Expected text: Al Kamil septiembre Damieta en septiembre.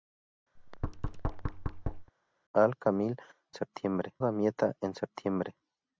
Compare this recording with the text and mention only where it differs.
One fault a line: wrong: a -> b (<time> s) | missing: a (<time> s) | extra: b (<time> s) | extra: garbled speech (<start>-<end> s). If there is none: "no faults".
no faults